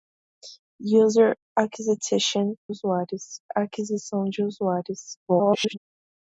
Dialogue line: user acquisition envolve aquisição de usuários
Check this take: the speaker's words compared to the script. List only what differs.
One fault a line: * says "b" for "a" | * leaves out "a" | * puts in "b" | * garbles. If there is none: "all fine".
* says "usuários" for "envolve"
* garbles